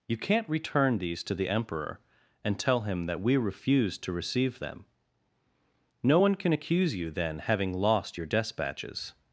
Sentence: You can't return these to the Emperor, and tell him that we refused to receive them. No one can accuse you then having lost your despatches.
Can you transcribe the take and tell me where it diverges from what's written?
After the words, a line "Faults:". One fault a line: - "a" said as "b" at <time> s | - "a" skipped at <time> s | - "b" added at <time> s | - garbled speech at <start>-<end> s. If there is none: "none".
You can't return these to the Emperor, and tell him that we refused to receive them. No one can accuse you then having lost your despatches.
Faults:
none